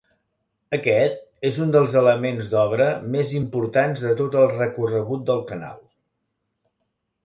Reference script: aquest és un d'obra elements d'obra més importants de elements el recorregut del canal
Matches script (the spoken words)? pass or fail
fail